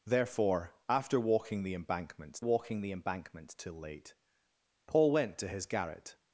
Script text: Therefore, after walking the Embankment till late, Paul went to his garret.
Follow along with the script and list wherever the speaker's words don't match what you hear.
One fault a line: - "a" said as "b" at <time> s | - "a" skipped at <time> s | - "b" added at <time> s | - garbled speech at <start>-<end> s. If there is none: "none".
- "walking the Embankment" added at 2.4 s